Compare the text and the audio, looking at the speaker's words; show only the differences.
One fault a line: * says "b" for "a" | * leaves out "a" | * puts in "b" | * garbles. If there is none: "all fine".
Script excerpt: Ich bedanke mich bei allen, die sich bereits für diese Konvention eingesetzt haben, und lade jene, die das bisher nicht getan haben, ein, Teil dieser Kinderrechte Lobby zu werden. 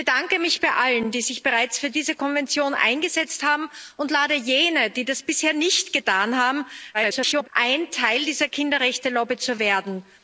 * garbles